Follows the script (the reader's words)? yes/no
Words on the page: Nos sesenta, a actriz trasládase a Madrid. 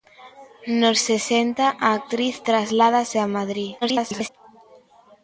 no